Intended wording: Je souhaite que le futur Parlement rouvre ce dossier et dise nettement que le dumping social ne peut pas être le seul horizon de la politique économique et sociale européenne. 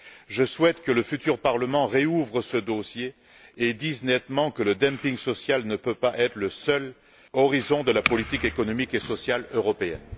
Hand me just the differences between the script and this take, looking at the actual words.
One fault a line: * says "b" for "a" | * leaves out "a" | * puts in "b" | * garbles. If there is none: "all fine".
all fine